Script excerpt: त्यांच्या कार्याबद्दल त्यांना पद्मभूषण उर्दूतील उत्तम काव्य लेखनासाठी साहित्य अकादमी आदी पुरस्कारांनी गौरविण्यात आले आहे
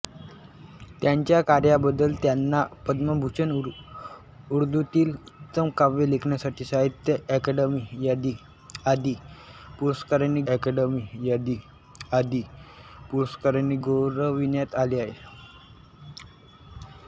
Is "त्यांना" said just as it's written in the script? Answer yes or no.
yes